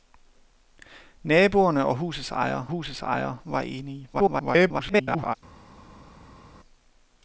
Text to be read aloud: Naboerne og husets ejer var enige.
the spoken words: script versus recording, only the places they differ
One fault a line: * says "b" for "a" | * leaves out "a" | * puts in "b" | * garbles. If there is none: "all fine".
* puts in "husets ejer"
* garbles